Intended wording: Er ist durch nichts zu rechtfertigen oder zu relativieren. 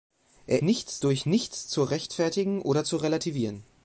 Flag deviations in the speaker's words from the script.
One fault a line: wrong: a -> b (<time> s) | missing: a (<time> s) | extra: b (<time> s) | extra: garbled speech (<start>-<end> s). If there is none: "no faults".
wrong: ist -> nichts (0.6 s)